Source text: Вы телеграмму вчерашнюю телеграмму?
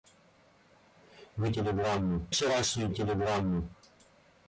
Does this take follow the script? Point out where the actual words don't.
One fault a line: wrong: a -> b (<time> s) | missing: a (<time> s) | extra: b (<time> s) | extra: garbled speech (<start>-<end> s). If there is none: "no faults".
no faults